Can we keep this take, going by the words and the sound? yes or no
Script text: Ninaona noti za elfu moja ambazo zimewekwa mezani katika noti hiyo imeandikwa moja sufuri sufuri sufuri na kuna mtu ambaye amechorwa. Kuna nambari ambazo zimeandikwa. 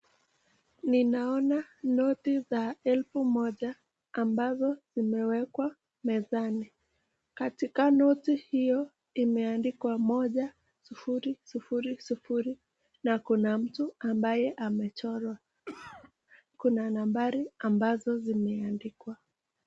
no